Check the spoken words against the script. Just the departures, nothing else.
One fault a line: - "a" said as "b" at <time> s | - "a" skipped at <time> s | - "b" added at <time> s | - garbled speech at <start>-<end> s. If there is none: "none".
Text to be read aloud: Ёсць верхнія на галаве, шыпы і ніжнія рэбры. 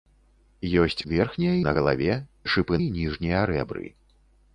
none